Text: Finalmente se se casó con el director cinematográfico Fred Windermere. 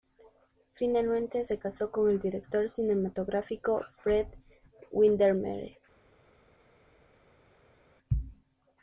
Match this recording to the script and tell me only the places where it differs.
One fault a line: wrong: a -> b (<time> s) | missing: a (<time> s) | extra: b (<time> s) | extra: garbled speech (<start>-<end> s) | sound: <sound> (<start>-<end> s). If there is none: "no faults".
missing: se (1.6 s)